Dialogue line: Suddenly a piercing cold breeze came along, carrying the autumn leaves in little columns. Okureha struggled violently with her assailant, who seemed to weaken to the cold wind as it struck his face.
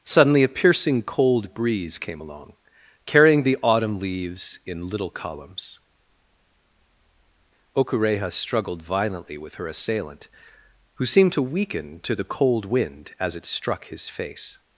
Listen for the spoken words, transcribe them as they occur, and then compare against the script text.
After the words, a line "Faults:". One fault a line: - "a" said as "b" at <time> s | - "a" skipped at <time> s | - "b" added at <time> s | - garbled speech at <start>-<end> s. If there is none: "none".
Suddenly a piercing cold breeze came along, carrying the autumn leaves in little columns. Okureha struggled violently with her assailant, who seemed to weaken to the cold wind as it struck his face.
Faults:
none